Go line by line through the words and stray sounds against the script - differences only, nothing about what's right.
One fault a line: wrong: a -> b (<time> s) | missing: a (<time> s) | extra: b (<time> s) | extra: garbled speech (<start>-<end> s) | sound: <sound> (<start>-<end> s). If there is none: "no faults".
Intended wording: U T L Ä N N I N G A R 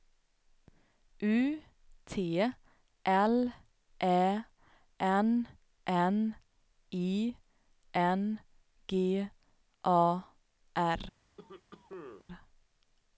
sound: cough (11.4-12.2 s)